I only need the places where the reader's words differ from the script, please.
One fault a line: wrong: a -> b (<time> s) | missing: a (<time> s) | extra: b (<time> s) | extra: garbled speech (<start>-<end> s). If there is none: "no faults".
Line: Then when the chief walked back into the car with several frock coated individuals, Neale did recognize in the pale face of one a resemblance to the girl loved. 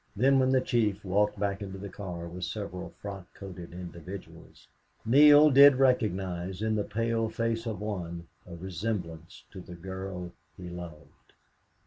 extra: he (10.5 s)